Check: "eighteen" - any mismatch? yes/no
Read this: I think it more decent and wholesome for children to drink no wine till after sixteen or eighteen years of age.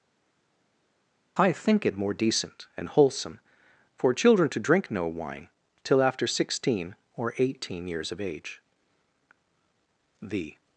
no